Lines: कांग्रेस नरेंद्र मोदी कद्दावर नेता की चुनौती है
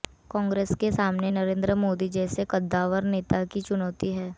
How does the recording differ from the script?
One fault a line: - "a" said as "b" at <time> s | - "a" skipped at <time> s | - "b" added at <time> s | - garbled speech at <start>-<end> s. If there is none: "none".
- "के सामने" added at 0.8 s
- "जैसे" added at 2.1 s